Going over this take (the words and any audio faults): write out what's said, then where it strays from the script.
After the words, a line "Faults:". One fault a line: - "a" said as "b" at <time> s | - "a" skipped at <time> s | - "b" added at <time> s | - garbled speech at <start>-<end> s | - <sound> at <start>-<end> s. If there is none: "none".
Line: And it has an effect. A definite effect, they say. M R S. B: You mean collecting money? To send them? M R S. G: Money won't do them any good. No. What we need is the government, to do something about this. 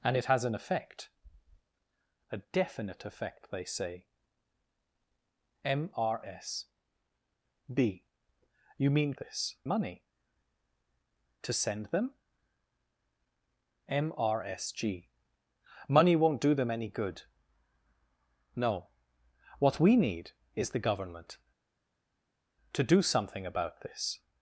And it has an effect. A definite effect, they say. M R S. B: You mean this money? To send them? M R S. G: Money won't do them any good. No. What we need is the government, to do something about this.
Faults:
- "collecting" said as "this" at 9.2 s